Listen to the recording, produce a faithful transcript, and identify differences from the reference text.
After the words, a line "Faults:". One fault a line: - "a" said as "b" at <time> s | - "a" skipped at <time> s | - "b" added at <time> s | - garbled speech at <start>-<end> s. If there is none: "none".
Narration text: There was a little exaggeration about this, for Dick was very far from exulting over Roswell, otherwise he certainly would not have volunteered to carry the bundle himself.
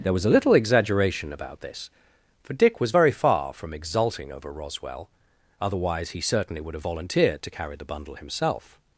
There was a little exaggeration about this, for Dick was very far from exulting over Roswell, otherwise he certainly would have volunteered to carry the bundle himself.
Faults:
- "not" skipped at 6.7 s